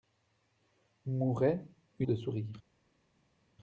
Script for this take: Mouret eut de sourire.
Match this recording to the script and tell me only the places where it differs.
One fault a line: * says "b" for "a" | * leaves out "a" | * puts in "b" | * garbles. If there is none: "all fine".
all fine